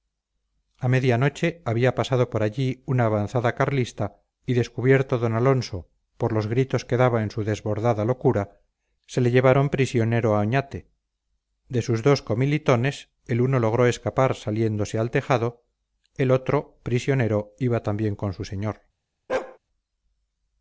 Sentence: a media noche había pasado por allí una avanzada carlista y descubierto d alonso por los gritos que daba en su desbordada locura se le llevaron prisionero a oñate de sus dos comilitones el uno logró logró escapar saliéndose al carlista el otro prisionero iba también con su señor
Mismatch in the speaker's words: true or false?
true